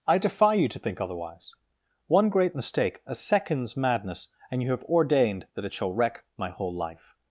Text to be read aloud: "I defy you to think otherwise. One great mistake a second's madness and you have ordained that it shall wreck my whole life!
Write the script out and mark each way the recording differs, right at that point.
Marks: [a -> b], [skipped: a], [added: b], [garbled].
"I defy you to think otherwise. One great mistake a second's madness and you have ordained that it shall wreck my whole life!